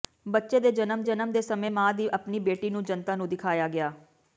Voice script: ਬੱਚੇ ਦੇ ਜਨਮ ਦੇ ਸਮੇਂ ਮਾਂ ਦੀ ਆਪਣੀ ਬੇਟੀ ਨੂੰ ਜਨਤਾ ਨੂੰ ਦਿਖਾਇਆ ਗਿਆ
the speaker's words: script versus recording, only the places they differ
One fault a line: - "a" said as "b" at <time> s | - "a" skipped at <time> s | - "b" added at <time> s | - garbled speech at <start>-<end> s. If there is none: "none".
- "ਜਨਮ" added at 1.0 s